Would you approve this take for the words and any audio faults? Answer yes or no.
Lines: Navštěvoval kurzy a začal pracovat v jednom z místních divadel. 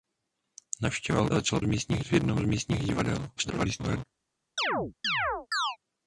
no